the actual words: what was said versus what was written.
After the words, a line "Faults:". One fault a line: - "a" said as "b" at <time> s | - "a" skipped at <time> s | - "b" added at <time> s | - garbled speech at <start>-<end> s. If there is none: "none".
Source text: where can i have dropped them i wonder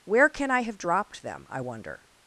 where can i have dropped them i wonder
Faults:
none